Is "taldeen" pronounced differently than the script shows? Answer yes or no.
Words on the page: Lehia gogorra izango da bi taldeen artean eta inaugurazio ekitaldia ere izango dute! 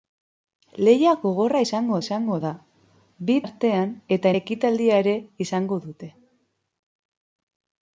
yes